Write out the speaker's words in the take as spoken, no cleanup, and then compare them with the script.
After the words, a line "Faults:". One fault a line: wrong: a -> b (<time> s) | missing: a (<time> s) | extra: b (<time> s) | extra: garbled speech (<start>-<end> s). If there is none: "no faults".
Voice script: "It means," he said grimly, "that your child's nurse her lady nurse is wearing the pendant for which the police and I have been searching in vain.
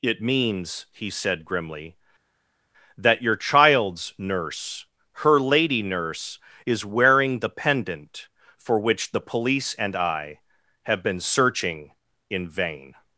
"It means," he said grimly, "that your child's nurse her lady nurse is wearing the pendant for which the police and I have been searching in vain.
Faults:
no faults